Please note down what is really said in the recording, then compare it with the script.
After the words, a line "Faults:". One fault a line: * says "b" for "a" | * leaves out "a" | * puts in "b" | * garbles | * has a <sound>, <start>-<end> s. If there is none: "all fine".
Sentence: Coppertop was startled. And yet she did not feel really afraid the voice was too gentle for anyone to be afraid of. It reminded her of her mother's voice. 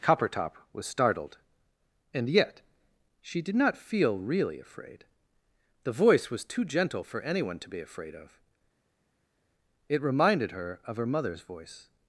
Coppertop was startled. And yet she did not feel really afraid the voice was too gentle for anyone to be afraid of. It reminded her of her mother's voice.
Faults:
all fine